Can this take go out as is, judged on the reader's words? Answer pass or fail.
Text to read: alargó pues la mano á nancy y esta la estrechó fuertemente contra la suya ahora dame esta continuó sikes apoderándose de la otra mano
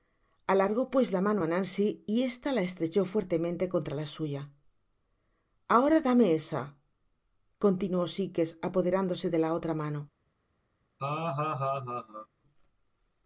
fail